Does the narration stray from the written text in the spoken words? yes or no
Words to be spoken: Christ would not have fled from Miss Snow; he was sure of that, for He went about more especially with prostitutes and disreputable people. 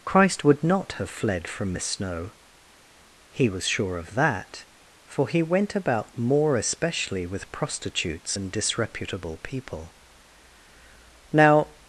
yes